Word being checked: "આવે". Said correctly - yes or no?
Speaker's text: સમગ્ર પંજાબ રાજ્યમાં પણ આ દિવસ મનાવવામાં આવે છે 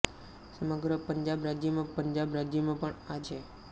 no